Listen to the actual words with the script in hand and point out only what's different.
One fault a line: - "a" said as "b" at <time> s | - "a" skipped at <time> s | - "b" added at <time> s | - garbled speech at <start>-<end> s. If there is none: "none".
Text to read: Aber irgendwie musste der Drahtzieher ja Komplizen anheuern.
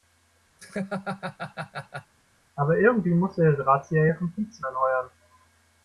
none